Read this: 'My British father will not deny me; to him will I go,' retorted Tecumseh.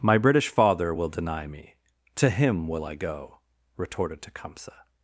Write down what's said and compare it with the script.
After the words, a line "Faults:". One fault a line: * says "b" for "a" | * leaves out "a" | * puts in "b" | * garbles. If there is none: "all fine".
'My British father will deny me; to him will I go,' retorted Tecumseh.
Faults:
* leaves out "not"